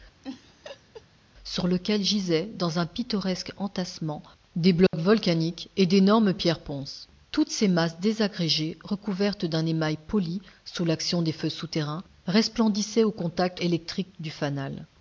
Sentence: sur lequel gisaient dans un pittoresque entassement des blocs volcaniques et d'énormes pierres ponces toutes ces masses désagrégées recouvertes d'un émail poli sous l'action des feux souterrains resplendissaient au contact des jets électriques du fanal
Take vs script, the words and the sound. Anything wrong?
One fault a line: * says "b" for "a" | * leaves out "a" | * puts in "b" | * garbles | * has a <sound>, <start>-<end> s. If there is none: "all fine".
* has a laugh, 0.2-1.1 s
* has a dropout, 4.9-4.9 s
* leaves out "des jets"